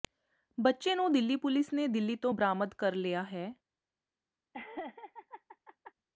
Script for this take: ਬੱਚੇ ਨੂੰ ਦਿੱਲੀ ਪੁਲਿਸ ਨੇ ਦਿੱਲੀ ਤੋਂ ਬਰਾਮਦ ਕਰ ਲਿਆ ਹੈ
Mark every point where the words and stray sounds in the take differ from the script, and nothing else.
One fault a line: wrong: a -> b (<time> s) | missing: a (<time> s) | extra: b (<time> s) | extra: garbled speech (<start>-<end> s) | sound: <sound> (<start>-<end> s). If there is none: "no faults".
sound: laugh (4.5-5.9 s)